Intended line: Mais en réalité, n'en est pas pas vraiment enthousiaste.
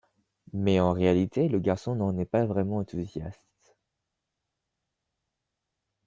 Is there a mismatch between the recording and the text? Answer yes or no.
yes